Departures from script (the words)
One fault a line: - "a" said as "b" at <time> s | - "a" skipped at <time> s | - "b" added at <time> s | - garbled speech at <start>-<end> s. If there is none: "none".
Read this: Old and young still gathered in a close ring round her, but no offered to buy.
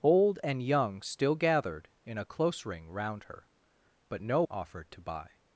none